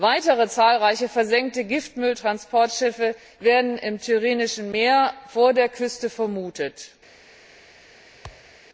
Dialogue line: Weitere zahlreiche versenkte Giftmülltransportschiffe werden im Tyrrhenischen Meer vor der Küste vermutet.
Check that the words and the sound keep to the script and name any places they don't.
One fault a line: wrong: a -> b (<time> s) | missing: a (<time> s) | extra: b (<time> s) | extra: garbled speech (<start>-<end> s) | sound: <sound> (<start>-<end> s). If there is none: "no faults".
sound: thud (8.2-8.5 s)